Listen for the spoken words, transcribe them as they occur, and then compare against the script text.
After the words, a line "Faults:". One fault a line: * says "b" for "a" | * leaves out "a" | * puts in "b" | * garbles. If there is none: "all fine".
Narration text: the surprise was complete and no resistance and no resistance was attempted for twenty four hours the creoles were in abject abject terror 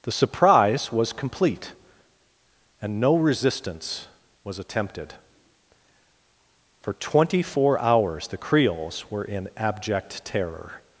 the surprise was complete and no resistance was attempted for twenty four hours the creoles were in abject terror
Faults:
* leaves out "and no resistance"
* leaves out "abject"